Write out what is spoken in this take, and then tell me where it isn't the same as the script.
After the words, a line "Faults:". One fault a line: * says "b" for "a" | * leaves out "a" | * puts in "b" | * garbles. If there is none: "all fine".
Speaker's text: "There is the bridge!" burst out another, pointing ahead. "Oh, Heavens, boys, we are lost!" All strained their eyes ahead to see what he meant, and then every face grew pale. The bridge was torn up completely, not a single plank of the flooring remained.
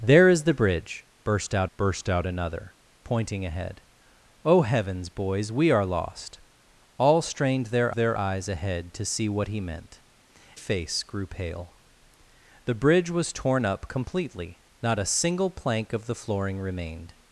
"There is the bridge!" burst out burst out another, pointing ahead. "Oh, Heavens, boys, we are lost!" All strained their their eyes ahead to see what he meant, face grew pale. The bridge was torn up completely, not a single plank of the flooring remained.
Faults:
* puts in "burst out"
* puts in "their"
* leaves out "and then every"